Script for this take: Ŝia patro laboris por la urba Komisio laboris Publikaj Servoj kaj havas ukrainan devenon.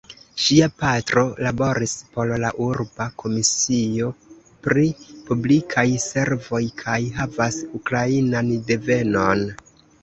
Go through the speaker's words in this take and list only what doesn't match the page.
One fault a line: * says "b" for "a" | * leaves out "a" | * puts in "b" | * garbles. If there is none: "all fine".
* says "pri" for "laboris"